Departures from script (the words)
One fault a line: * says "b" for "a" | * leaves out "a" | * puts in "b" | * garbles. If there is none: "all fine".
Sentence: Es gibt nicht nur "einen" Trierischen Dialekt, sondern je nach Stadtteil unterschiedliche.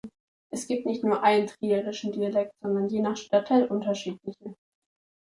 all fine